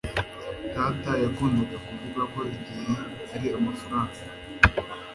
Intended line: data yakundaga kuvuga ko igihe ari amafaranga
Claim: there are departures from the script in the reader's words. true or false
false